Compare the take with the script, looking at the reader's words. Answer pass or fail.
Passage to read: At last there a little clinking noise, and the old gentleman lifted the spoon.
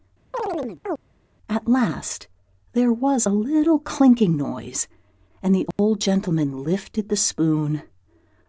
fail